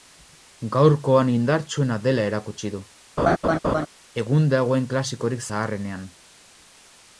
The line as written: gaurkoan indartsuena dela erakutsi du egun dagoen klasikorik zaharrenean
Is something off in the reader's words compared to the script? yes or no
no